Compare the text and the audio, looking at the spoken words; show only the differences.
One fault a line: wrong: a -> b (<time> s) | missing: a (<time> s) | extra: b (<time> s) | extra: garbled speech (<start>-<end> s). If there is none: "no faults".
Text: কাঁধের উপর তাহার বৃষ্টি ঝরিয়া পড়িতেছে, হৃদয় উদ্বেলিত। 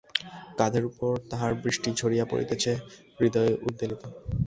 no faults